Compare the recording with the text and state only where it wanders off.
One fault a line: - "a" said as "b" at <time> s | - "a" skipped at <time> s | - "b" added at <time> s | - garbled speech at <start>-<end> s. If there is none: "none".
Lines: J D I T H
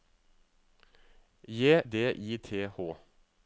none